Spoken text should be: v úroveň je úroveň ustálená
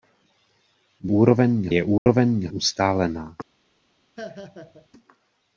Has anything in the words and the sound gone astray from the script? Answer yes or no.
yes